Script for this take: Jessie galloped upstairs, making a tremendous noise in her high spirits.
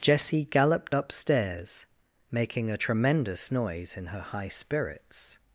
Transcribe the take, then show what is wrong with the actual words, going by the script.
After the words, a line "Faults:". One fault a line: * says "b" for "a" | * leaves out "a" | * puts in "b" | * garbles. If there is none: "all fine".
Jessie galloped upstairs, making a tremendous noise in her high spirits.
Faults:
all fine